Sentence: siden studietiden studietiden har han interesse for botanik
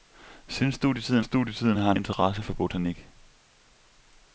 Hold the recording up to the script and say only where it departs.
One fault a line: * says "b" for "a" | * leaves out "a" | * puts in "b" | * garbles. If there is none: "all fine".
all fine